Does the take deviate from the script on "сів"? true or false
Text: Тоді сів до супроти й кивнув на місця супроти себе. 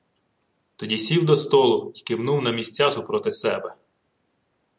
false